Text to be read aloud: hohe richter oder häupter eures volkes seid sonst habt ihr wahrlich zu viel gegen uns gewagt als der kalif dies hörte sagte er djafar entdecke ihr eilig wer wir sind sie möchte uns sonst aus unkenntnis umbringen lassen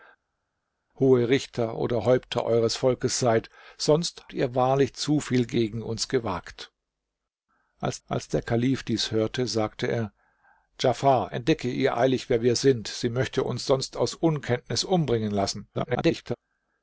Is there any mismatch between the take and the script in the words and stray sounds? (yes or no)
yes